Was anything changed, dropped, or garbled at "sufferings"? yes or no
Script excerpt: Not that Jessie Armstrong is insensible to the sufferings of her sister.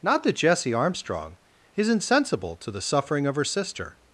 yes